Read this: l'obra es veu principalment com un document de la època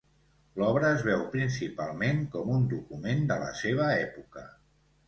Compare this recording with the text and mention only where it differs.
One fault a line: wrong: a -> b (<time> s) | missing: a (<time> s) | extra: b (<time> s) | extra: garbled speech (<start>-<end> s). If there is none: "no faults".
extra: seva (3.6 s)